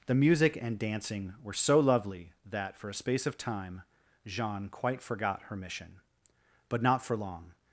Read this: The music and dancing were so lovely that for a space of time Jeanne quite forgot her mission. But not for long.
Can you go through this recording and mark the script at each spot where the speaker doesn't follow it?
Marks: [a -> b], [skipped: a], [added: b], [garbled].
The music and dancing were so lovely that for a space of time Jeanne quite forgot her mission. But not for long.